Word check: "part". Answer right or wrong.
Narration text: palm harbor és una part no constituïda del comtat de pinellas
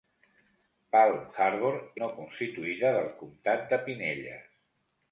wrong